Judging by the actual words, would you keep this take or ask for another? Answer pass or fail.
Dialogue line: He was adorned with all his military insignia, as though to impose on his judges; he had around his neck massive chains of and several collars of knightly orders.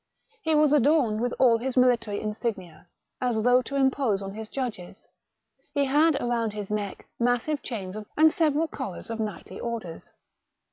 pass